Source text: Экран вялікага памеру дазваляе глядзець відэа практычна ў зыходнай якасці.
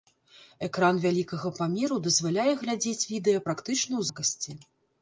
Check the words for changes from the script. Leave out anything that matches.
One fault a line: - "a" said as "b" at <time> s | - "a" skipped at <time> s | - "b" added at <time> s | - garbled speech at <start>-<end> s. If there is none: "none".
- "зыходнай" skipped at 4.0 s